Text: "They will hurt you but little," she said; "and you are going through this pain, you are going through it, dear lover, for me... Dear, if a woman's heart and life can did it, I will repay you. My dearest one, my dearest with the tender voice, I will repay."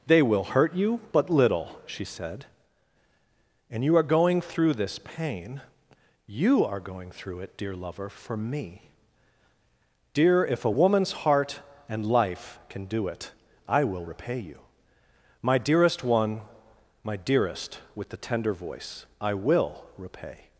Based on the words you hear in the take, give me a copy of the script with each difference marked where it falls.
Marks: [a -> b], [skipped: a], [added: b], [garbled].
"They will hurt you but little," she said; "and you are going through this pain, you are going through it, dear lover, for me... Dear, if a woman's heart and life can [did -> do] it, I will repay you. My dearest one, my dearest with the tender voice, I will repay."